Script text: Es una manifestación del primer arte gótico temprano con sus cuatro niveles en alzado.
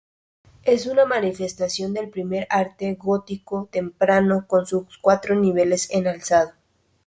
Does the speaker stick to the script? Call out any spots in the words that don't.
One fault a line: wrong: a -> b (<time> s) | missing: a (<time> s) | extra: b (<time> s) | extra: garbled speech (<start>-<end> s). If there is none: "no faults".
no faults